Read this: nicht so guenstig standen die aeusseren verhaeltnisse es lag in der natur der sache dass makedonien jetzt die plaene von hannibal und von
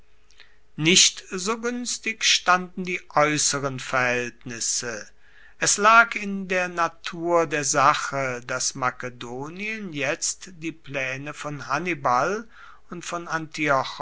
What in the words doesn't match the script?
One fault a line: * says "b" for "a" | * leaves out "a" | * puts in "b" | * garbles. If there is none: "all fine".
all fine